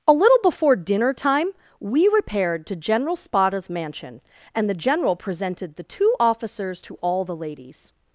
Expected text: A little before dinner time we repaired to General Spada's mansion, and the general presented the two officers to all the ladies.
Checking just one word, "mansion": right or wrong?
right